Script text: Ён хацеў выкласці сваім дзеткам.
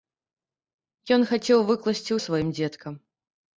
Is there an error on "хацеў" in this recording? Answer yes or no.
no